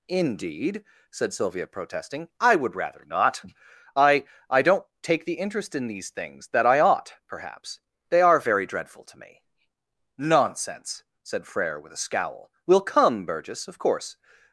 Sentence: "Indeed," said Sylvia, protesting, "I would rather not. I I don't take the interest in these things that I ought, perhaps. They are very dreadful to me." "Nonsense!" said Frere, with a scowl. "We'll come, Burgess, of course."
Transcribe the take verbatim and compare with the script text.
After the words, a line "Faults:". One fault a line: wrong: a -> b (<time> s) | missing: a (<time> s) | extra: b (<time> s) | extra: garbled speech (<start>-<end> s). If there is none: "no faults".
"Indeed," said Sylvia, protesting, "I would rather not. I I don't take the interest in these things that I ought, perhaps. They are very dreadful to me." "Nonsense!" said Frere, with a scowl. "We'll come, Burgess, of course."
Faults:
no faults